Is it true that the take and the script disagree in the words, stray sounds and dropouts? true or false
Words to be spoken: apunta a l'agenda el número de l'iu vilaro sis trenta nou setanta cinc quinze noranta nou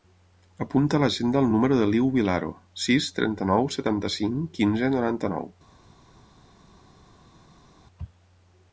false